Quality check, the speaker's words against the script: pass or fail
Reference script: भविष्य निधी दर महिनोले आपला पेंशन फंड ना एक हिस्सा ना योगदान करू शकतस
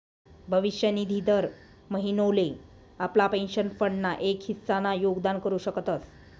pass